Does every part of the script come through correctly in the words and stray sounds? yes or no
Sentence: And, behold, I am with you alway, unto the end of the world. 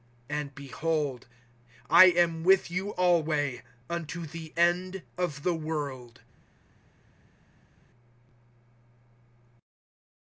yes